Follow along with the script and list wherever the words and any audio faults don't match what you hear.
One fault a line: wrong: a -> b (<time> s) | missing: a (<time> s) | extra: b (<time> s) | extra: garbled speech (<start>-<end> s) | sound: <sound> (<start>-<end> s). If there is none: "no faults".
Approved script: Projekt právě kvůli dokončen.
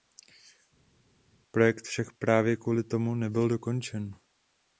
extra: však (1.9 s)
extra: tomu nebyl (2.8 s)